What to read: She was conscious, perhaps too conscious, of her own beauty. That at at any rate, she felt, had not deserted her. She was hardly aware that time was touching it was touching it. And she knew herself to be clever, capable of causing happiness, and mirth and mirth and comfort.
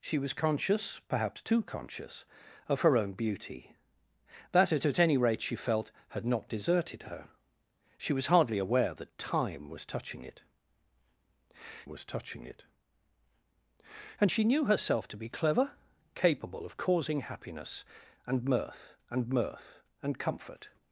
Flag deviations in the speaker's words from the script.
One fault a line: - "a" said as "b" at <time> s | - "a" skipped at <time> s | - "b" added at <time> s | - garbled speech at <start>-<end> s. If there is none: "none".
none